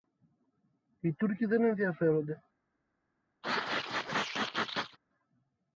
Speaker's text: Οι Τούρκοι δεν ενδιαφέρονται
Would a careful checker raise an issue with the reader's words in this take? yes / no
no